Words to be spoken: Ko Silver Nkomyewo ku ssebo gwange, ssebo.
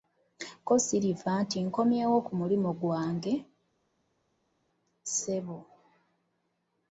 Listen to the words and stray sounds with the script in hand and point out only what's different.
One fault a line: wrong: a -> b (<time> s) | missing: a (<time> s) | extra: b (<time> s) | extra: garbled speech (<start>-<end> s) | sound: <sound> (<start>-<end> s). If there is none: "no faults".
extra: nti (1.4 s)
wrong: ssebo -> mulimu (2.4 s)